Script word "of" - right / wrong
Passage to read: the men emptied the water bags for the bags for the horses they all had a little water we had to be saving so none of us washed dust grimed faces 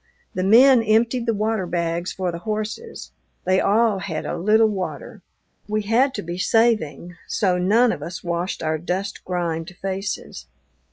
right